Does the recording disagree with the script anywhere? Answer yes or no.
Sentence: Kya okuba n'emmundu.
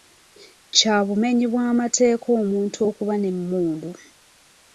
yes